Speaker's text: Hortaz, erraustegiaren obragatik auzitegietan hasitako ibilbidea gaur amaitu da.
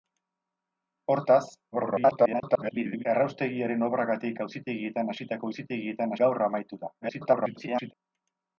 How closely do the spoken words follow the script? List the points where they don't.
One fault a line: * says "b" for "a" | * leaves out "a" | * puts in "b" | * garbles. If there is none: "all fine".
* garbles
* says "auzitegietan" for "ibilbidea"
* garbles